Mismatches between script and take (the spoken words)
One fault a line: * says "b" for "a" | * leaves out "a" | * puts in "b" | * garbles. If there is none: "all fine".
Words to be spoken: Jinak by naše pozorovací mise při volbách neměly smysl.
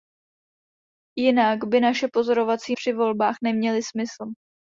* leaves out "mise"